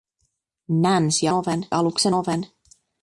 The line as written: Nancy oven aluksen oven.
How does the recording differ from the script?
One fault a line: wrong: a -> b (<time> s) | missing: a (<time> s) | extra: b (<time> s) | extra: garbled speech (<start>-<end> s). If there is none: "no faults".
no faults